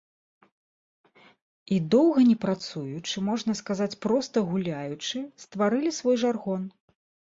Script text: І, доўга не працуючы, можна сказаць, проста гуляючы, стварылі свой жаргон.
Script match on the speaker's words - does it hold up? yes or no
yes